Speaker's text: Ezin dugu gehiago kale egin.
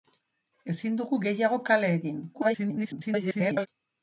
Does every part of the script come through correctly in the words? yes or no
no